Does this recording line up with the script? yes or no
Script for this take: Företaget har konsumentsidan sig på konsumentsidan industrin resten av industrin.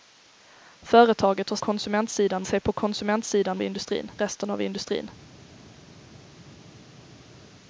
yes